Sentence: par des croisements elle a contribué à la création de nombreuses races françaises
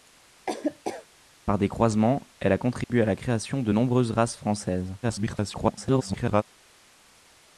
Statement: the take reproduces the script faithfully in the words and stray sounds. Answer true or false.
false